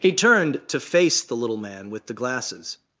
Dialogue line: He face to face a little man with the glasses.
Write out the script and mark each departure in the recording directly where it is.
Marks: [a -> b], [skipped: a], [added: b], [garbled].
He [face -> turned] to face [a -> the] little man with the glasses.